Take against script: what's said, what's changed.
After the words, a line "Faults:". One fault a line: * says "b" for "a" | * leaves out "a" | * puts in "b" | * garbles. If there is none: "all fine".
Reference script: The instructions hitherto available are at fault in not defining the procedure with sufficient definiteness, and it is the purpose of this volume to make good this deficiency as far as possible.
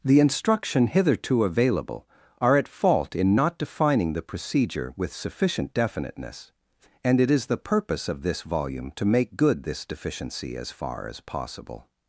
The instruction hitherto available are at fault in not defining the procedure with sufficient definiteness, and it is the purpose of this volume to make good this deficiency as far as possible.
Faults:
* says "instruction" for "instructions"